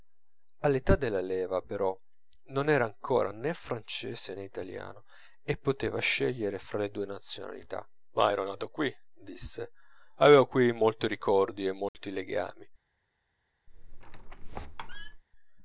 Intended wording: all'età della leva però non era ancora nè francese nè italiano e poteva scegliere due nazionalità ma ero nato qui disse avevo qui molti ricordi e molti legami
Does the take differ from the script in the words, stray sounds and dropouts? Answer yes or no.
yes